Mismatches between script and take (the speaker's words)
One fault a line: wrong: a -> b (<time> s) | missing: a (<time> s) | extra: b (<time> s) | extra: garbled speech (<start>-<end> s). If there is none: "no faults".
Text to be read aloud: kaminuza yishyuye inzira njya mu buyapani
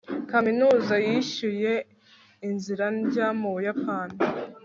no faults